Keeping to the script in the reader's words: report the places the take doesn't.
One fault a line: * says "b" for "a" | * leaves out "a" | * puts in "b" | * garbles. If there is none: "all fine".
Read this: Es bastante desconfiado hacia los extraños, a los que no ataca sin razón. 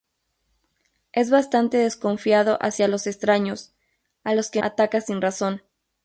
* leaves out "no"